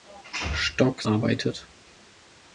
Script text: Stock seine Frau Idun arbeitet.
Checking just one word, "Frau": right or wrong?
wrong